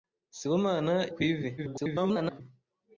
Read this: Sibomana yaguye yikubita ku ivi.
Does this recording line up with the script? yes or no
no